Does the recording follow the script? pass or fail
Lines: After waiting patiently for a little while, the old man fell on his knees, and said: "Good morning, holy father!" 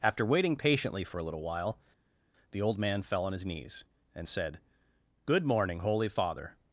pass